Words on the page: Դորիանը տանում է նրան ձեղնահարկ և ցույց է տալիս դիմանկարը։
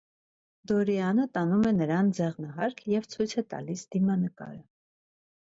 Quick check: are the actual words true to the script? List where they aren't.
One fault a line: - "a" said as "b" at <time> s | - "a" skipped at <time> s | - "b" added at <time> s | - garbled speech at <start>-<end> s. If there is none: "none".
none